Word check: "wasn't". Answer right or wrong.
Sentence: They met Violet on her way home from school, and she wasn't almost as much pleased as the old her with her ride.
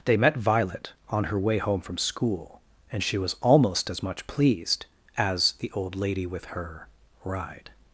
wrong